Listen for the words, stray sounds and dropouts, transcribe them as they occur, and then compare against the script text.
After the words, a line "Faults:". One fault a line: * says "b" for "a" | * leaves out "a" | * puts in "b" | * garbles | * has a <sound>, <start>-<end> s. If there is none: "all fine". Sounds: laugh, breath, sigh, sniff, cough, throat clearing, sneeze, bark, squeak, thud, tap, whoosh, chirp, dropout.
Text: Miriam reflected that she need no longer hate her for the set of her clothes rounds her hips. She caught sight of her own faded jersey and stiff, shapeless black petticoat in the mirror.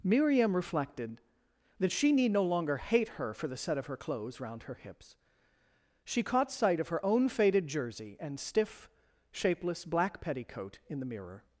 Miriam reflected that she need no longer hate her for the set of her clothes round her hips. She caught sight of her own faded jersey and stiff, shapeless black petticoat in the mirror.
Faults:
* says "round" for "rounds"